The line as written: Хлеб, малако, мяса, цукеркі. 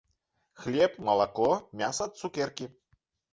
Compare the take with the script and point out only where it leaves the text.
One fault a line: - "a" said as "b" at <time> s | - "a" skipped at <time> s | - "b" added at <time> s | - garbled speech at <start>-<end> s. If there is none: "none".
none